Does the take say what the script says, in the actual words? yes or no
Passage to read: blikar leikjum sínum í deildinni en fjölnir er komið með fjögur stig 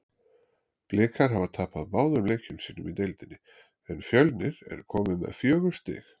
no